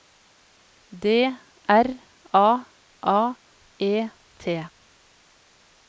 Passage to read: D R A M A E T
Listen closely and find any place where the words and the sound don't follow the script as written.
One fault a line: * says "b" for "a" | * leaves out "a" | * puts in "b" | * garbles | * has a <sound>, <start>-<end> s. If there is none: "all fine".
* leaves out "M"